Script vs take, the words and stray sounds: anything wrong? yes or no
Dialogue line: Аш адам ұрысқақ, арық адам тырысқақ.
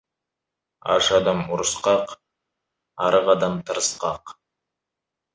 no